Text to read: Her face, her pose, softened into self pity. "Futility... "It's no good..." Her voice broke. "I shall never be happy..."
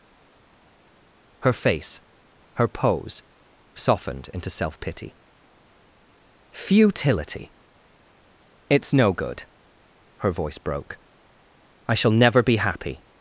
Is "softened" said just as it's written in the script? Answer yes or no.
yes